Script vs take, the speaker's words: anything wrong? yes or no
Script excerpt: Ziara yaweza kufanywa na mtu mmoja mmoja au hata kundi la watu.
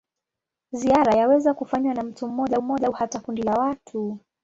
no